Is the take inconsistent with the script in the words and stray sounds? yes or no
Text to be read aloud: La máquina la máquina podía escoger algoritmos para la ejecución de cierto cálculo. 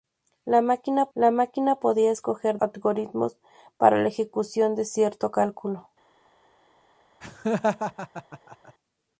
yes